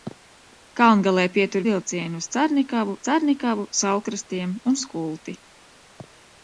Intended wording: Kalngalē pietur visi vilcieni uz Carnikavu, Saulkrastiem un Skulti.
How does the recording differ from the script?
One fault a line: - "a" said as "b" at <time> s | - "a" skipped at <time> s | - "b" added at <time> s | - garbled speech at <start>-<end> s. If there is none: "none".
- "visi" skipped at 1.6 s
- "Carnikavu" added at 3.1 s